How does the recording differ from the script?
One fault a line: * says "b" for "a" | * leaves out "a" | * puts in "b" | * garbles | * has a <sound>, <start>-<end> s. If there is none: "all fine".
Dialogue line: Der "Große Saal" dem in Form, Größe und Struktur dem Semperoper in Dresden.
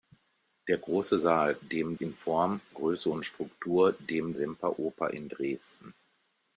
all fine